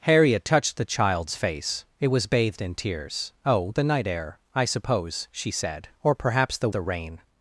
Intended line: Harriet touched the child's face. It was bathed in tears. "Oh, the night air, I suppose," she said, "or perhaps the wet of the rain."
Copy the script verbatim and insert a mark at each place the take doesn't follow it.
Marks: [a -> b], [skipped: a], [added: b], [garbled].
Harriet touched the child's face. It was bathed in tears. "Oh, the night air, I suppose," she said, "or perhaps the [skipped: wet of] the rain."